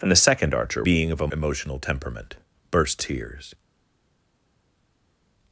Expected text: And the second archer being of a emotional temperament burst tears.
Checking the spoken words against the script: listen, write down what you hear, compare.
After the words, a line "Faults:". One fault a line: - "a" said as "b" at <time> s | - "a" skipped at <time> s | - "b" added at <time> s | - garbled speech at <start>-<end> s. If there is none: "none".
And the second archer being of a emotional temperament burst tears.
Faults:
none